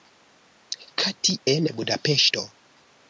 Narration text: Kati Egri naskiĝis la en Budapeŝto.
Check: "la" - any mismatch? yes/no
yes